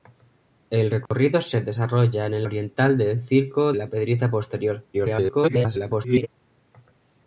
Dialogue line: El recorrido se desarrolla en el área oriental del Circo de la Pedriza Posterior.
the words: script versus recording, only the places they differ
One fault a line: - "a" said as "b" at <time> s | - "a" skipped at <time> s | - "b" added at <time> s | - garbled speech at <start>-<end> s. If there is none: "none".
- "área" skipped at 2.5 s
- "de" skipped at 3.7 s
- garbled speech at 4.9-6.3 s